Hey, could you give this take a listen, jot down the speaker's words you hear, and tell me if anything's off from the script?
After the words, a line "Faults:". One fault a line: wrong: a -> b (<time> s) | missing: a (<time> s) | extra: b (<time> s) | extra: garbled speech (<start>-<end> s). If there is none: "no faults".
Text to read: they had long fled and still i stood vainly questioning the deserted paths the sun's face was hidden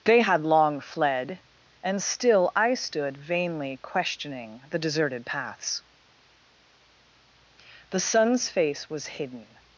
they had long fled and still i stood vainly questioning the deserted paths the sun's face was hidden
Faults:
no faults